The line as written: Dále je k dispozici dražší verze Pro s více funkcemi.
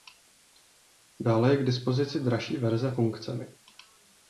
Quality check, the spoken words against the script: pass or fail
fail